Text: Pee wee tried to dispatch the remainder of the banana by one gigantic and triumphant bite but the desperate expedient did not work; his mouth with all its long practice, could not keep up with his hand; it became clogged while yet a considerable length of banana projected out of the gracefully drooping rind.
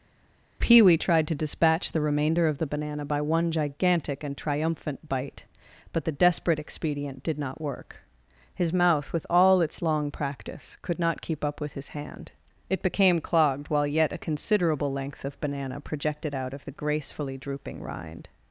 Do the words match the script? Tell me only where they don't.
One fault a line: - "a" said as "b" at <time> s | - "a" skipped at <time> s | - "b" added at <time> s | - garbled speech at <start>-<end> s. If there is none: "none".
none